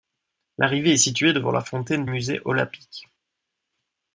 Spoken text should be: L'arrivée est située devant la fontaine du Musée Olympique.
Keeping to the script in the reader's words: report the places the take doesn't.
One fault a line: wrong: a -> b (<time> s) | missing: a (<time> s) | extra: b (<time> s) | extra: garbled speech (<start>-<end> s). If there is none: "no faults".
missing: du (2.1 s)